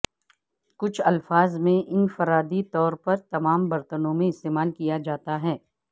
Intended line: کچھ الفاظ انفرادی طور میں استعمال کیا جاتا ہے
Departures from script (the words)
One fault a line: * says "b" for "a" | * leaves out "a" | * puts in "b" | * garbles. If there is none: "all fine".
* puts in "میں"
* puts in "پر تمام برتنوں"